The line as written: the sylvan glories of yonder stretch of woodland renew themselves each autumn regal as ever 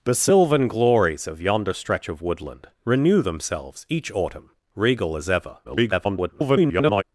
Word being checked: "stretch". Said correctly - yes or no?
yes